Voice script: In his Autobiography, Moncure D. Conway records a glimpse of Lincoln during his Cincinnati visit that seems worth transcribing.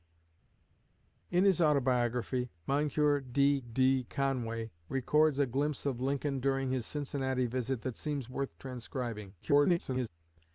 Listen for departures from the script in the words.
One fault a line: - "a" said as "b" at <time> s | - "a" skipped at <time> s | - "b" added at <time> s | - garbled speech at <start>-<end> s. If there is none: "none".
- "D" added at 3.6 s
- garbled speech at 9.4-10.1 s